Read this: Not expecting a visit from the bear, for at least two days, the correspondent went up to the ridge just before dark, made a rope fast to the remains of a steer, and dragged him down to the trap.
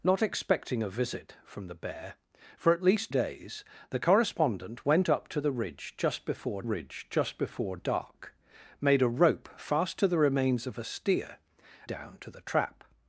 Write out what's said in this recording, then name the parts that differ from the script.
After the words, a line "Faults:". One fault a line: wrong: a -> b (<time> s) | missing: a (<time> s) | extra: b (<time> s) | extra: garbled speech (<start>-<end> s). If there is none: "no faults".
Not expecting a visit from the bear, for at least days, the correspondent went up to the ridge just before ridge just before dark, made a rope fast to the remains of a steer, down to the trap.
Faults:
missing: two (3.1 s)
extra: ridge just before (6.6 s)
missing: and dragged him (11.4 s)